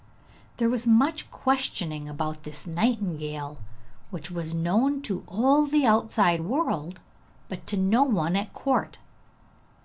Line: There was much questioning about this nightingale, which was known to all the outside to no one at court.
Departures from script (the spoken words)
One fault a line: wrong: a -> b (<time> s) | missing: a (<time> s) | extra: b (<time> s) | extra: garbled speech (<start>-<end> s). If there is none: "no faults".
extra: world but (6.4 s)